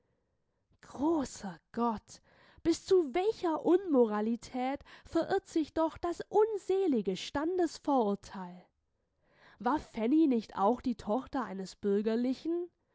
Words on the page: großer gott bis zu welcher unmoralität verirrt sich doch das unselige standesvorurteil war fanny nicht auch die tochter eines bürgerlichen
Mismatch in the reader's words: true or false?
false